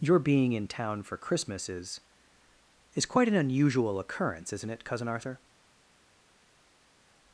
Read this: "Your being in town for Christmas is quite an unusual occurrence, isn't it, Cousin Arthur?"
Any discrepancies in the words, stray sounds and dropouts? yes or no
yes